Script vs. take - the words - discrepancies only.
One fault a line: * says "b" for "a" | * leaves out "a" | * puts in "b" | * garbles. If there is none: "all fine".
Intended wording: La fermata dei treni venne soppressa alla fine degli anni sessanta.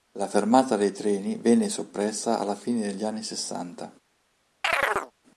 all fine